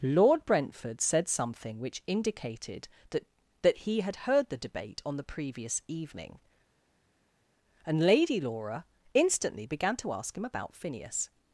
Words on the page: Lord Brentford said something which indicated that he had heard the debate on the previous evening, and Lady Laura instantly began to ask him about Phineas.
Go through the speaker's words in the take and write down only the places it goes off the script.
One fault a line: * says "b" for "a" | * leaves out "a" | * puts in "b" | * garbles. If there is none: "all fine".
* puts in "that"